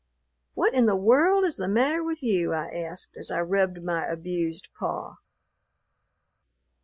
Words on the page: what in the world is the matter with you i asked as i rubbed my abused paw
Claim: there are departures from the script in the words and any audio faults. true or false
false